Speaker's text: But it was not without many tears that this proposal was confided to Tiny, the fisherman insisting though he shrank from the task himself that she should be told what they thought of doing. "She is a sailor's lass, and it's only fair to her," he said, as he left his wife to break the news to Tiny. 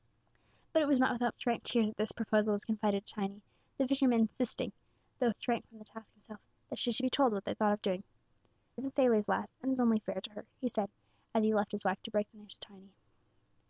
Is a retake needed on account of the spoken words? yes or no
yes